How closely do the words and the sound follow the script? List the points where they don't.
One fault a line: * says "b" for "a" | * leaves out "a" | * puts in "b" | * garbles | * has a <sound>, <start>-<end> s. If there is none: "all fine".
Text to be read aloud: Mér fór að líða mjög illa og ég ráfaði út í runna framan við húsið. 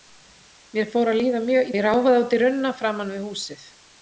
* leaves out "illa og"